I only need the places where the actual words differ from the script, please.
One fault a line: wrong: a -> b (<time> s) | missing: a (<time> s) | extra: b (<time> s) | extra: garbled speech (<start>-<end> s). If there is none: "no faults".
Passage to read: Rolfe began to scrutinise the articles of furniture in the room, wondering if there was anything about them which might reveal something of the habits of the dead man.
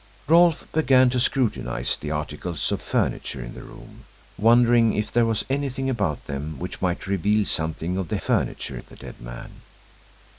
wrong: habits -> furniture (8.2 s)